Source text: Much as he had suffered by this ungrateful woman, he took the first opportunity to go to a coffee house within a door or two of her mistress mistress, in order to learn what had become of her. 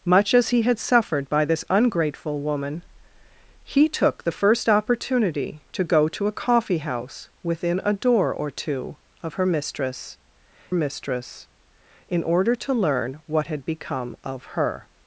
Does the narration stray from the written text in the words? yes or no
no